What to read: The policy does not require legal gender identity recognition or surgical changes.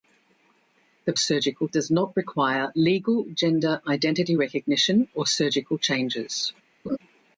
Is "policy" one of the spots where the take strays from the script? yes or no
yes